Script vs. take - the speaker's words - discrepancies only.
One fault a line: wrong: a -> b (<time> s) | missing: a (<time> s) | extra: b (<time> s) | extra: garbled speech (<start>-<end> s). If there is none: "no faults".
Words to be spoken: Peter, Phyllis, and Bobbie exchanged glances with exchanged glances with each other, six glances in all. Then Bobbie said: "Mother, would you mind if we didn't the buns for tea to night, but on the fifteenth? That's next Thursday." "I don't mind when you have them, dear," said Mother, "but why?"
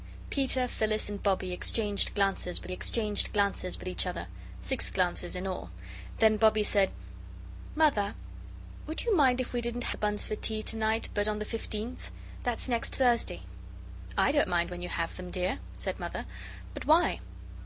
no faults